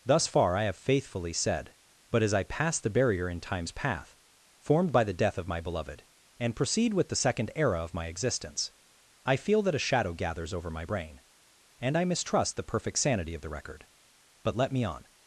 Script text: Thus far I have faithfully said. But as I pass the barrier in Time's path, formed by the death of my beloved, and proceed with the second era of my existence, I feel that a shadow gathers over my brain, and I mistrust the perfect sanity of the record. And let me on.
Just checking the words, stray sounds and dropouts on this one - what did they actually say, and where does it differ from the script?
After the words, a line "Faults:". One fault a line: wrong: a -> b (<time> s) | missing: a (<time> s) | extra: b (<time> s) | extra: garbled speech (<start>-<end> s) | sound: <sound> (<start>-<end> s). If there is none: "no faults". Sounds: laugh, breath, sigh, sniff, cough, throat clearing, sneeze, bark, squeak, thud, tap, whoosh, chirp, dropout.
Thus far I have faithfully said. But as I pass the barrier in Time's path, formed by the death of my beloved, and proceed with the second era of my existence, I feel that a shadow gathers over my brain, and I mistrust the perfect sanity of the record. But let me on.
Faults:
wrong: And -> But (14.4 s)